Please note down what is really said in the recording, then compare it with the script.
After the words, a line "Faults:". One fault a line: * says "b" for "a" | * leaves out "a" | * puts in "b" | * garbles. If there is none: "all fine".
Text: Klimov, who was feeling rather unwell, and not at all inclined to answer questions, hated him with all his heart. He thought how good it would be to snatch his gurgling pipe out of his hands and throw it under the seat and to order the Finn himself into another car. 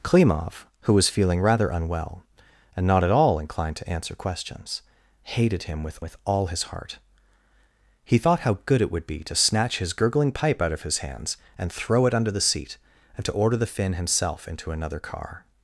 Klimov, who was feeling rather unwell, and not at all inclined to answer questions, hated him with with all his heart. He thought how good it would be to snatch his gurgling pipe out of his hands and throw it under the seat and to order the Finn himself into another car.
Faults:
* puts in "with"